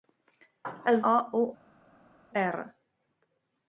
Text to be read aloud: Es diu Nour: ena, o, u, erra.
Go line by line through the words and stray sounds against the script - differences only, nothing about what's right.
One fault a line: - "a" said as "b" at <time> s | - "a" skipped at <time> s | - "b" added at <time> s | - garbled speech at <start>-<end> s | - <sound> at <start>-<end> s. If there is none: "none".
- "diu Nour ena" skipped at 0.9 s